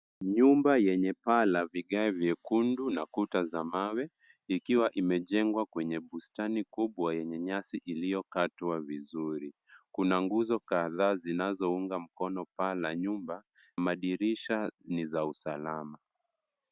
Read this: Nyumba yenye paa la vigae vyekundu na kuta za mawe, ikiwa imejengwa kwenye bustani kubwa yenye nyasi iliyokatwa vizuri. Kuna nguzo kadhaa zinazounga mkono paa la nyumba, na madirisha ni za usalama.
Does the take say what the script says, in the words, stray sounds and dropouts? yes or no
no